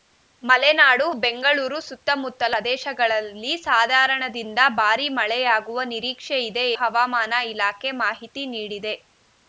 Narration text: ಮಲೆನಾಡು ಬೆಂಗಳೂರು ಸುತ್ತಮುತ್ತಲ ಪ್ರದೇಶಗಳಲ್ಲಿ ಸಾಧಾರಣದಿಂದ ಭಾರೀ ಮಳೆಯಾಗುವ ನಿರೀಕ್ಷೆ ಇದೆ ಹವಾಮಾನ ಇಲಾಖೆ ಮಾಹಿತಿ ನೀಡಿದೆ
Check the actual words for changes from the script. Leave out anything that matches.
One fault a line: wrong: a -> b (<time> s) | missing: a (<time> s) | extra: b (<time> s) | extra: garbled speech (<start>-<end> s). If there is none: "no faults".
no faults